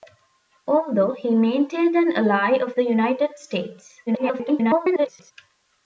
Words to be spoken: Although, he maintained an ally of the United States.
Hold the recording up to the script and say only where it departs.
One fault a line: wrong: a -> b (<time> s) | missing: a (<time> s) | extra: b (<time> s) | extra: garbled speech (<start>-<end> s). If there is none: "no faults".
extra: garbled speech (4.1-5.3 s)